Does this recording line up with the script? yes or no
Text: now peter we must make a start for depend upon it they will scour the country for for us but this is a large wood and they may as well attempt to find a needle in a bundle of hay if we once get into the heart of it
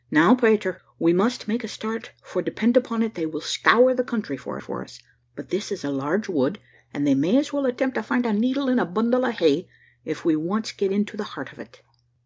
yes